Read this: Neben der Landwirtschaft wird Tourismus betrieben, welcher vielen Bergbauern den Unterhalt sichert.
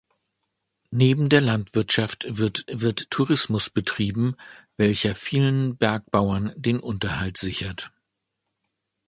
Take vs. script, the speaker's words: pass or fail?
fail